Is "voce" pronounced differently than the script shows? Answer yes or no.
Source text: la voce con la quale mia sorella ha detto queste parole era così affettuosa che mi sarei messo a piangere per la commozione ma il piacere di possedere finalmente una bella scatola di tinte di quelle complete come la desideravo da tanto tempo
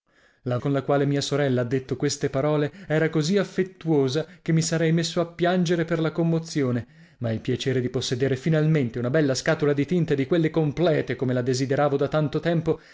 yes